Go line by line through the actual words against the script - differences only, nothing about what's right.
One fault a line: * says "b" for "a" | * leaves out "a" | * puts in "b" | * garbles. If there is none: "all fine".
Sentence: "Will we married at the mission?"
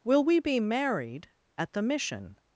* puts in "be"